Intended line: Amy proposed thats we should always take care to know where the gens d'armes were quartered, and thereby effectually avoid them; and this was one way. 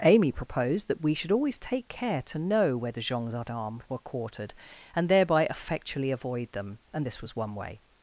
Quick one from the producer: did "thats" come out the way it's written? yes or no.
no